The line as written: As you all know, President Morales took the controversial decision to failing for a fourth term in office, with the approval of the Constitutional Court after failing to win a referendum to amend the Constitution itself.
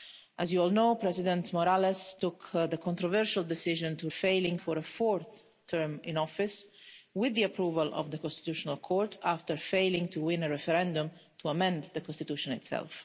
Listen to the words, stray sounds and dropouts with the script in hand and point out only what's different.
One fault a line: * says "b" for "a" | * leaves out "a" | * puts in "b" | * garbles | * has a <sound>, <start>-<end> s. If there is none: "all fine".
all fine